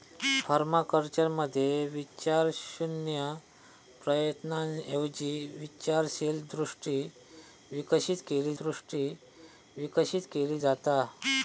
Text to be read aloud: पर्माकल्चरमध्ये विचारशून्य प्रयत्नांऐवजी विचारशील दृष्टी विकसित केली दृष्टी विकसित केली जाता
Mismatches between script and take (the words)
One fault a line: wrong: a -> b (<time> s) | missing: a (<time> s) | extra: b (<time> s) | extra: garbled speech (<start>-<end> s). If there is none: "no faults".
no faults